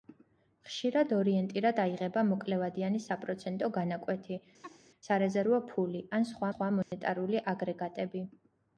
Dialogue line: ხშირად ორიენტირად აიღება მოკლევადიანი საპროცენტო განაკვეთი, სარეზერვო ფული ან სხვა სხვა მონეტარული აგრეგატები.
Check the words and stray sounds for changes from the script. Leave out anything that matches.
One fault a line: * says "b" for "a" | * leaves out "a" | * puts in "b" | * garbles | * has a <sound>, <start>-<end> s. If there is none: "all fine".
* has a laugh, 4.6-4.8 s
* has a dropout, 6.8-6.9 s